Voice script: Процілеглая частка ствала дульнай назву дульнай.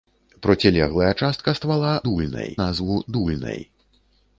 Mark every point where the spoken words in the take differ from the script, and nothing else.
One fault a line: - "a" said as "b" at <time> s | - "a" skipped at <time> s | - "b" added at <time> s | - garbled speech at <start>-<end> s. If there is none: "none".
none